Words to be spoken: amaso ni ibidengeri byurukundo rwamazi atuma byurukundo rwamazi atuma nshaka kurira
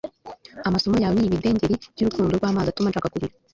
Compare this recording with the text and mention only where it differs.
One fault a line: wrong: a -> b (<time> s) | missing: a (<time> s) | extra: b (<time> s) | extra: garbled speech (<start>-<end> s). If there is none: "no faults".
extra: yawe (1.0 s)
missing: byurukundo rwamazi atuma (2.9 s)